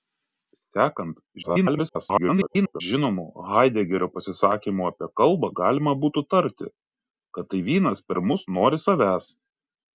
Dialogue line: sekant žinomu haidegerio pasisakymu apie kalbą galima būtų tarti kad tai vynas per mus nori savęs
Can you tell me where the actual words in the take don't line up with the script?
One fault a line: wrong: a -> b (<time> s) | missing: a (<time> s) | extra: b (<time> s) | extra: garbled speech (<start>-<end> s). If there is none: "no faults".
extra: garbled speech (1.4-2.8 s)